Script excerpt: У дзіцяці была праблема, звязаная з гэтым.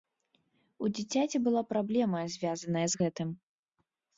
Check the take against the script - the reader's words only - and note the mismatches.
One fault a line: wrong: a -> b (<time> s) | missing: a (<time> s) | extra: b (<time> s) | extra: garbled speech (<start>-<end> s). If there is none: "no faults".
no faults